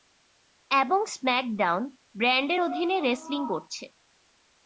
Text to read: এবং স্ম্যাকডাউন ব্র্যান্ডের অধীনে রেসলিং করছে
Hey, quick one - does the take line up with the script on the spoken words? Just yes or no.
yes